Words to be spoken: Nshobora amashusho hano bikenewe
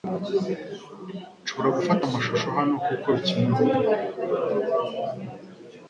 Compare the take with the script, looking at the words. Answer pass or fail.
fail